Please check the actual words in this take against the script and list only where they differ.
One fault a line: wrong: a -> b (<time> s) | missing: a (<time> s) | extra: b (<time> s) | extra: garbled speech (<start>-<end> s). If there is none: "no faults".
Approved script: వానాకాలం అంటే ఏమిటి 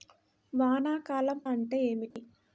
no faults